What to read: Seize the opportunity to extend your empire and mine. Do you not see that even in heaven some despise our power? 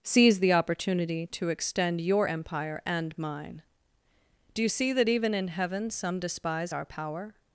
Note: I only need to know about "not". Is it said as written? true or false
false